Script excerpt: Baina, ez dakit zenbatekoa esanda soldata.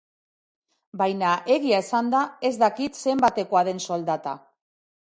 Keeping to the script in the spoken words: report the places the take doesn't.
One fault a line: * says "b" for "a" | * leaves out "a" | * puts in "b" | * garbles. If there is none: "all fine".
* puts in "egia esanda"
* says "den" for "esanda"